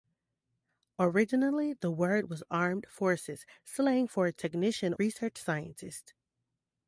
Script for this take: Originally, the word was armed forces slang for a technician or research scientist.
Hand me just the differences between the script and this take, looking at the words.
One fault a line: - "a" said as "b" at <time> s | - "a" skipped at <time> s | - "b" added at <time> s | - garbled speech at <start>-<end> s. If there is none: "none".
- "or" skipped at 5.0 s